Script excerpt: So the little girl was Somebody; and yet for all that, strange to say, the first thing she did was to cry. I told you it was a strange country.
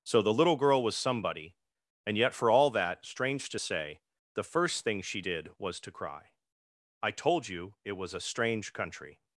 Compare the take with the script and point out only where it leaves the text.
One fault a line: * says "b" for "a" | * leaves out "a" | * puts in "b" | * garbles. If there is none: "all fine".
all fine